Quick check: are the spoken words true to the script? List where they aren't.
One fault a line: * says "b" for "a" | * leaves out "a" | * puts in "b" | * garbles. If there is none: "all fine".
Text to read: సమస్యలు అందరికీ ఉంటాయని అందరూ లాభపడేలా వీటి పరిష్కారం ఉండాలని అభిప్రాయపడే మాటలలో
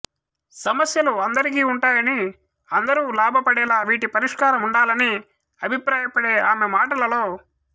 * puts in "ఆమె"